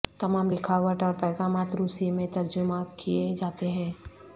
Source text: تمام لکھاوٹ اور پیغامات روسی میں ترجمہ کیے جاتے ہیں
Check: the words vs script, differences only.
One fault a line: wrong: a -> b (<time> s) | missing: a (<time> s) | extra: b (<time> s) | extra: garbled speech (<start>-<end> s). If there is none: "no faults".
no faults